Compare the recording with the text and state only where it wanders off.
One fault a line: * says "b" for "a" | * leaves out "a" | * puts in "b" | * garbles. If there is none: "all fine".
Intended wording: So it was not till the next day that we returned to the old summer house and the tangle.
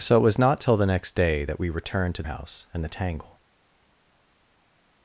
* leaves out "the old summer"